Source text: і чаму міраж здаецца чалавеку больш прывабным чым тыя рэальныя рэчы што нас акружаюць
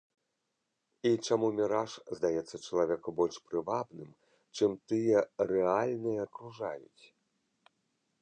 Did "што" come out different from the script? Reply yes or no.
yes